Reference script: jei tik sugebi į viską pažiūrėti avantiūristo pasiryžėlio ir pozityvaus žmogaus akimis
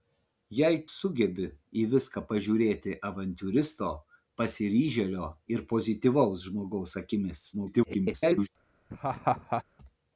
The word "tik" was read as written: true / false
false